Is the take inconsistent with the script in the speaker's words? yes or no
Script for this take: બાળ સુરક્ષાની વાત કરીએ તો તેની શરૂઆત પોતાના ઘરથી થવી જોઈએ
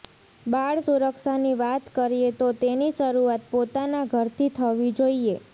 no